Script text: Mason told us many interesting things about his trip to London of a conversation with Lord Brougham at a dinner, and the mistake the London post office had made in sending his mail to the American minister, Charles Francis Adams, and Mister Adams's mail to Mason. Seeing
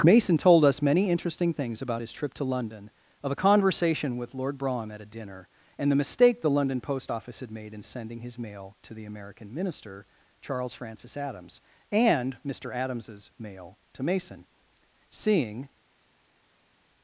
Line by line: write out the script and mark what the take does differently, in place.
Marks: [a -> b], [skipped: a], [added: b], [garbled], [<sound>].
Mason told us many interesting things about his trip to London of a conversation with Lord Brougham at a dinner, and the mistake the London post office had made in sending his mail to the American minister, Charles Francis Adams, and Mister Adams's mail to Mason. Seeing